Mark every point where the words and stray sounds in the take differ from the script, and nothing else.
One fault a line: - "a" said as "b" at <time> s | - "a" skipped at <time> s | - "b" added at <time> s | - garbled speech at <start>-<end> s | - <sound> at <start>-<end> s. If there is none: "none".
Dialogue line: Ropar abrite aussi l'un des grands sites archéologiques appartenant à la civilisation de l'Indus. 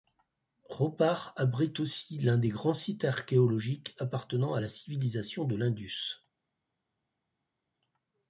none